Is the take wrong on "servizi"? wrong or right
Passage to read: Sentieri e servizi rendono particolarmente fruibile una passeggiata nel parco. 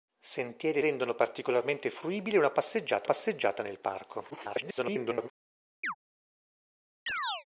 wrong